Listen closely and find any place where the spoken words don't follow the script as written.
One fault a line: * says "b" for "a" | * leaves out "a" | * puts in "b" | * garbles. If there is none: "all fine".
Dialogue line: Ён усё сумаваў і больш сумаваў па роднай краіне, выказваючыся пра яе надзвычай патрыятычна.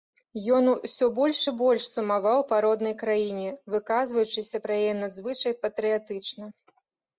* says "больш" for "сумаваў"